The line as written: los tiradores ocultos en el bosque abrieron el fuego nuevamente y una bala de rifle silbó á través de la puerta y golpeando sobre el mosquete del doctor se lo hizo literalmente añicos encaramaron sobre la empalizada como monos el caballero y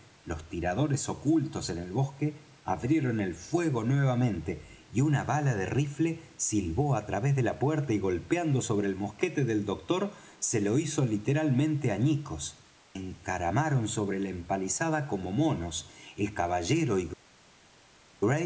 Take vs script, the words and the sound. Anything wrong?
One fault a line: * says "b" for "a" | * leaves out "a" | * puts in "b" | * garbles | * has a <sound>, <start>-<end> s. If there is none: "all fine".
all fine